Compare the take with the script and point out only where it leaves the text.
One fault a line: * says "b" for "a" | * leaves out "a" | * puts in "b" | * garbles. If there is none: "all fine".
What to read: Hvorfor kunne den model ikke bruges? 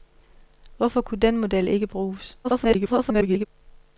* garbles